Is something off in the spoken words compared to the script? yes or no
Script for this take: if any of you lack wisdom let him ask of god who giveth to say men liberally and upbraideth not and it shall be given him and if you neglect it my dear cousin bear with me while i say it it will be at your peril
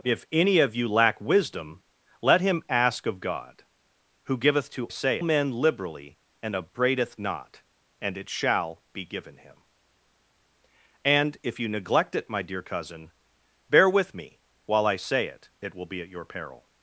no